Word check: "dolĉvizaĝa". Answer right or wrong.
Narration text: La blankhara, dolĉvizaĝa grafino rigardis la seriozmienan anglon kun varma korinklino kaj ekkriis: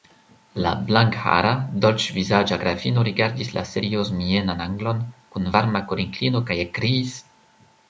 right